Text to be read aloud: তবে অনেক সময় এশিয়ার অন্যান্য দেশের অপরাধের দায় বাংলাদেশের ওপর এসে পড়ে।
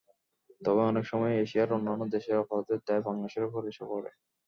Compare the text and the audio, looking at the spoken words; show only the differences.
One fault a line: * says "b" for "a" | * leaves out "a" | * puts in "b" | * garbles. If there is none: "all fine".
all fine